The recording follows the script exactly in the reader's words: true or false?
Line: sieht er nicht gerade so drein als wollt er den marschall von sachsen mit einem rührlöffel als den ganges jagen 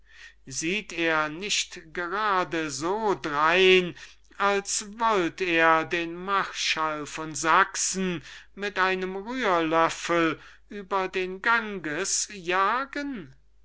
false